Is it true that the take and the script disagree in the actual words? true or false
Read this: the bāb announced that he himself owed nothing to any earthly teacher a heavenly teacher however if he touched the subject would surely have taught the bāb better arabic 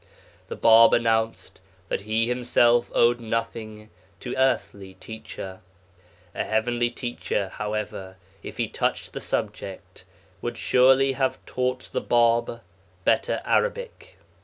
true